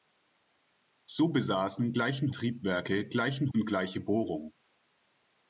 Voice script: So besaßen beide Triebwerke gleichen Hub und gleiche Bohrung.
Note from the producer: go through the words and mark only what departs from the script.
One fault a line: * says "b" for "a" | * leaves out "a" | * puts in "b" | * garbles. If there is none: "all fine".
* says "gleichen" for "beide"
* leaves out "Hub"